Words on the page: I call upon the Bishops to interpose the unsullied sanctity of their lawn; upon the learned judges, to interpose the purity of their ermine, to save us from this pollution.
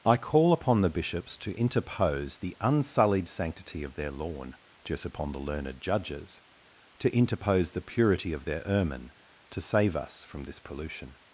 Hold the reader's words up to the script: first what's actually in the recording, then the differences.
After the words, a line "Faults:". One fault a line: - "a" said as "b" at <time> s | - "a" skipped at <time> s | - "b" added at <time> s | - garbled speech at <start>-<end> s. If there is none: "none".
I call upon the Bishops to interpose the unsullied sanctity of their lawn; just upon the learned judges, to interpose the purity of their ermine, to save us from this pollution.
Faults:
- "just" added at 4.8 s